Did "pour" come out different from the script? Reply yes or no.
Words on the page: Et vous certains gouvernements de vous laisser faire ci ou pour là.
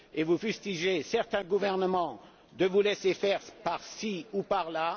yes